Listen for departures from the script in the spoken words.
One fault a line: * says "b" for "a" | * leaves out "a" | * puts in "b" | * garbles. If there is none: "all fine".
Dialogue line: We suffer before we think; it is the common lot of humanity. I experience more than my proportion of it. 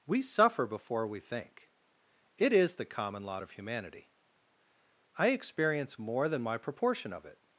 all fine